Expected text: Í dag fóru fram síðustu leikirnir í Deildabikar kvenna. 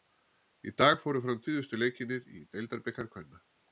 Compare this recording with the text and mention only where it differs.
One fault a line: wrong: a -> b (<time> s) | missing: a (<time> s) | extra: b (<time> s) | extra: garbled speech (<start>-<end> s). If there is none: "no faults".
no faults